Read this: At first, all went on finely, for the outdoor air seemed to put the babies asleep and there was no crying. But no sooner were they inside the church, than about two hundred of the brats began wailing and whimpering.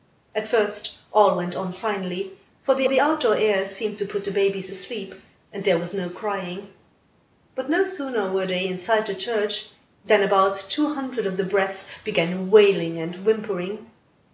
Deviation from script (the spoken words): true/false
true